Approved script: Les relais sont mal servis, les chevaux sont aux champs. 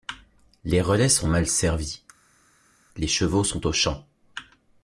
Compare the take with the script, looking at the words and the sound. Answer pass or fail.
pass